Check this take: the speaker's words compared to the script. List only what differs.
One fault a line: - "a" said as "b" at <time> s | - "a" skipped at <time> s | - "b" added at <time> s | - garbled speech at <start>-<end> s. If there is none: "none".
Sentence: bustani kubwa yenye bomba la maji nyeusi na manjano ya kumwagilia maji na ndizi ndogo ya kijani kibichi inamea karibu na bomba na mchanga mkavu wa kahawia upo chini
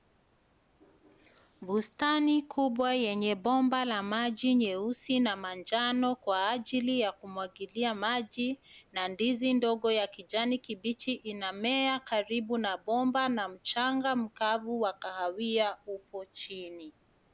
- "kwa ajili" added at 6.2 s